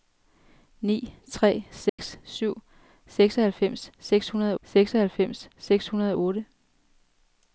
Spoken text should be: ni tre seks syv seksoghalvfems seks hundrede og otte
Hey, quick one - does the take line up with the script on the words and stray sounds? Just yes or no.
no